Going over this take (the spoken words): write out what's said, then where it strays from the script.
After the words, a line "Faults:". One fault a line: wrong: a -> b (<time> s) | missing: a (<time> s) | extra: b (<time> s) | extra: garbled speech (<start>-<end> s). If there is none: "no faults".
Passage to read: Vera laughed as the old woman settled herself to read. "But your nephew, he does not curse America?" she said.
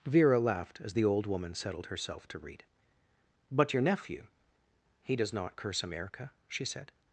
Vera laughed as the old woman settled herself to read. "But your nephew, he does not curse America?" she said.
Faults:
no faults